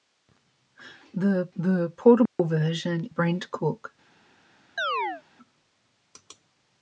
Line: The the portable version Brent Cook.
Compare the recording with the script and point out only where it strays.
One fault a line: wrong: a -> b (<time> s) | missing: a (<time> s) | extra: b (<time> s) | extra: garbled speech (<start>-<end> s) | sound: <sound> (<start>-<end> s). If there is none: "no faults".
sound: dropout (2.3-2.4 s)
sound: chirp (4.8-5.2 s)